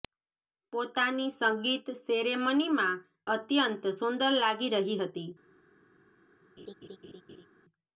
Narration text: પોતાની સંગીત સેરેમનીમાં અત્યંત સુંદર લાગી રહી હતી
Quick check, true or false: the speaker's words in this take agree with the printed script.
true